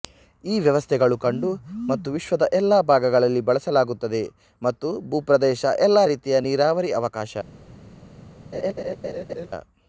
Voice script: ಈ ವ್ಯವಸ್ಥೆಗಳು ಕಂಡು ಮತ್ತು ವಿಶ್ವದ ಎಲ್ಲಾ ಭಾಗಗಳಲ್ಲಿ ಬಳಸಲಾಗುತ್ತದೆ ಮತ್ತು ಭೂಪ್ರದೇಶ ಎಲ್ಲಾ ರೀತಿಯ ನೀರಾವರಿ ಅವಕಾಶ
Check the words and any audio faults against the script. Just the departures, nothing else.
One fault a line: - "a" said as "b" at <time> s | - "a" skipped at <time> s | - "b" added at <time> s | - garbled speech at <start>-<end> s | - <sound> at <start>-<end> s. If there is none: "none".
- laugh at 8.5-9.5 s